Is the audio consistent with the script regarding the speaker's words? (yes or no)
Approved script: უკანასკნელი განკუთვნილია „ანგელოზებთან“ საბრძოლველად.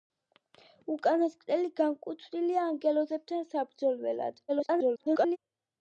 no